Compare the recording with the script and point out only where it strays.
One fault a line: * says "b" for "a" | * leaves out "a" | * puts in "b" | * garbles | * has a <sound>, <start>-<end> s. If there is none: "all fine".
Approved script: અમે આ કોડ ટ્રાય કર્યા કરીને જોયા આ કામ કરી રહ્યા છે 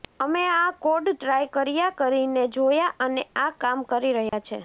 * puts in "અને"
* has a dropout, 4.3-4.3 s